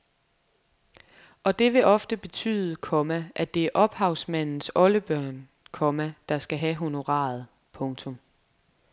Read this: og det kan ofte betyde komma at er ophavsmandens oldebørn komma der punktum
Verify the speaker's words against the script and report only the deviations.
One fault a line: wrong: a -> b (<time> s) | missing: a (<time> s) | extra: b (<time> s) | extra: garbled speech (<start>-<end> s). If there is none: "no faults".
wrong: kan -> vil (1.7 s)
extra: det (3.5 s)
extra: skal have honoraret (6.4 s)